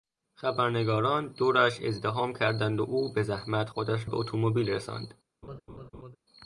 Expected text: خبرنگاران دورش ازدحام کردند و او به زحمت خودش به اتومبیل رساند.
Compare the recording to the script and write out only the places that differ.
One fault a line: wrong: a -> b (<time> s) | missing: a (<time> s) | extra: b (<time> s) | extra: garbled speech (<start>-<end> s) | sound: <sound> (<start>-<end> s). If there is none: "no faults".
sound: laugh (5.4-6.2 s)